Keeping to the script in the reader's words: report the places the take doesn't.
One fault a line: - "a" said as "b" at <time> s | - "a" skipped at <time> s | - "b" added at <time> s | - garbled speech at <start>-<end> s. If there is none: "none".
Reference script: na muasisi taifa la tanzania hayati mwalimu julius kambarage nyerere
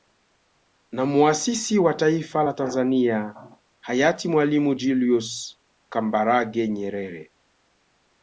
- "wa" added at 1.8 s